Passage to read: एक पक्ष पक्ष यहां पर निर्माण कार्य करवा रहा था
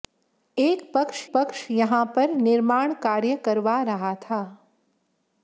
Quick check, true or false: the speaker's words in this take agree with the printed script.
true